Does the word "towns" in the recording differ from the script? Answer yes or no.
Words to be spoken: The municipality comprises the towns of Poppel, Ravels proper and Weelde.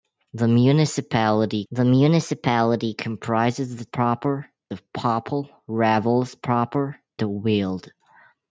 yes